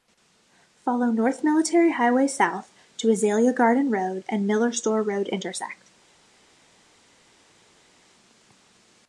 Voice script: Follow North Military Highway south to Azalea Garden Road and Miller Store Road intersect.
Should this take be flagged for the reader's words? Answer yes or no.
no